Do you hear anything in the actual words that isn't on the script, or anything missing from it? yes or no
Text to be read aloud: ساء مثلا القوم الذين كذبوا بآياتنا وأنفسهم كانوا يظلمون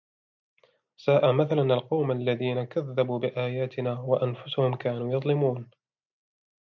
no